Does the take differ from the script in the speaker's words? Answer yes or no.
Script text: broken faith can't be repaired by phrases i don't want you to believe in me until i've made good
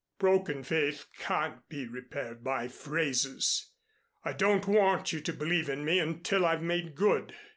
no